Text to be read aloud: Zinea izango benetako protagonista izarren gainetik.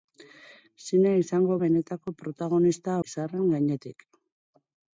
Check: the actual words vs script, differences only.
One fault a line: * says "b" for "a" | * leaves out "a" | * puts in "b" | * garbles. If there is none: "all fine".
all fine